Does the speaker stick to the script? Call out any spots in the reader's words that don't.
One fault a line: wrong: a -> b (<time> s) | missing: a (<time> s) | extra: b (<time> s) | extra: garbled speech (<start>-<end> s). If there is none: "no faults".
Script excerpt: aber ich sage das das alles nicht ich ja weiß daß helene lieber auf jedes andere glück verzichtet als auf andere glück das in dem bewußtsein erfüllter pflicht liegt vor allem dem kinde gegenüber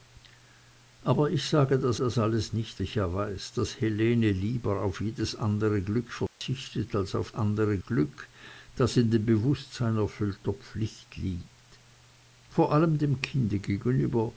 no faults